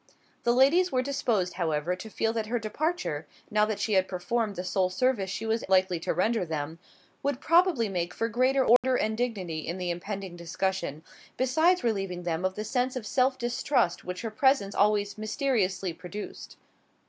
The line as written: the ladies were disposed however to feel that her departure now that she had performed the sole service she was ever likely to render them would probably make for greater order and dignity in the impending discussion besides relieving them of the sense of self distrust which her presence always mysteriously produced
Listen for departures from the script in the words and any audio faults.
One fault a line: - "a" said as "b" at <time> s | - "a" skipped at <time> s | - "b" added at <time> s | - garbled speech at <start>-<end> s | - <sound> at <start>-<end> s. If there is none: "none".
- "ever" skipped at 5.6 s
- dropout at 8.8-8.8 s